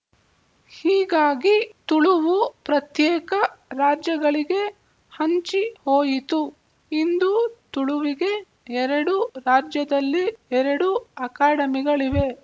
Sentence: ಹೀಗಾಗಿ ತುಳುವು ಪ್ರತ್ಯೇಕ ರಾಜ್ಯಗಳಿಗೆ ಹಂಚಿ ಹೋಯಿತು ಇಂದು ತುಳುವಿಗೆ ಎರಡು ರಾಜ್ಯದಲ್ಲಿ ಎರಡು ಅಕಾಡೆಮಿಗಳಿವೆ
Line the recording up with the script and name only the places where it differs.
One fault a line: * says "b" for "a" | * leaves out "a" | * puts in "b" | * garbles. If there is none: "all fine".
all fine